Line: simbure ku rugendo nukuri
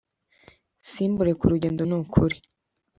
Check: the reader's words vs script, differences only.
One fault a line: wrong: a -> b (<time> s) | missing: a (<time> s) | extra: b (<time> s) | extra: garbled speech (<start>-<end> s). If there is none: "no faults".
no faults